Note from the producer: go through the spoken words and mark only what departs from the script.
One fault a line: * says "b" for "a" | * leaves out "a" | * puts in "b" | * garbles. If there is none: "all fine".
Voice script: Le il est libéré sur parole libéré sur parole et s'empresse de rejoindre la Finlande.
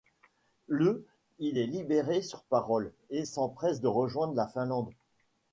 * leaves out "libéré sur parole"